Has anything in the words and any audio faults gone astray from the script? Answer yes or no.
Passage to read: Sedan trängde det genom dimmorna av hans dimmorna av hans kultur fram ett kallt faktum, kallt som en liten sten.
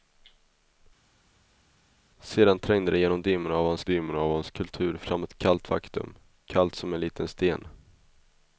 no